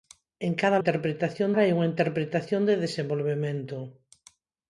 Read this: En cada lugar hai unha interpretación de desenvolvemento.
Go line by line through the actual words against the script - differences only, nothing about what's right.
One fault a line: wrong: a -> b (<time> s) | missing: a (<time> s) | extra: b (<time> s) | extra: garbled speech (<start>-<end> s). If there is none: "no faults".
wrong: lugar -> interpretación (0.8 s)